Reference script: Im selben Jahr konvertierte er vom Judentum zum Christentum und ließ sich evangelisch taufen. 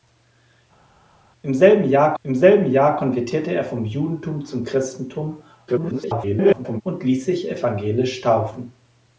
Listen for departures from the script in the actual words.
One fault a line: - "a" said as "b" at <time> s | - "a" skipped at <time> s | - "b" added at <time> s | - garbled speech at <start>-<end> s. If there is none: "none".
- "im selben Jahr" added at 2.2 s
- garbled speech at 5.7-6.8 s